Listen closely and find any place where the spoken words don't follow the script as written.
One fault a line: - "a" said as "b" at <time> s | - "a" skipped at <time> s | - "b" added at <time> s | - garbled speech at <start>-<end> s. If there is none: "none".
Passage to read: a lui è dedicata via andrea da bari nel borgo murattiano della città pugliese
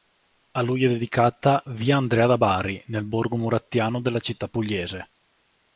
none